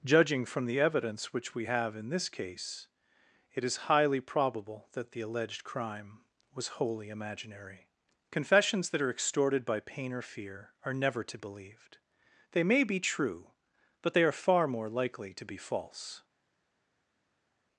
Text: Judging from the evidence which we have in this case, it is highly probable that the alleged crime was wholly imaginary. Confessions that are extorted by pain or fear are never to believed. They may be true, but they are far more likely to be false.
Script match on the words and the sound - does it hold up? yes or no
yes